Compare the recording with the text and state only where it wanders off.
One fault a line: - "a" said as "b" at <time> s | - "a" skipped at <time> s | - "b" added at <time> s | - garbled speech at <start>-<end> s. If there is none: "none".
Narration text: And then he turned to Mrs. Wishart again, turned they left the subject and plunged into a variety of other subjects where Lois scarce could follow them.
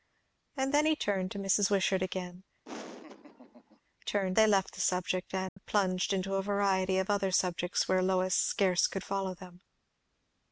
none